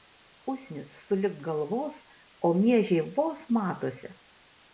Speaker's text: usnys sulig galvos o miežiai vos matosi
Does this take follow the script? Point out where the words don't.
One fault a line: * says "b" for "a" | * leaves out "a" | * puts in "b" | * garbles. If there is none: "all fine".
all fine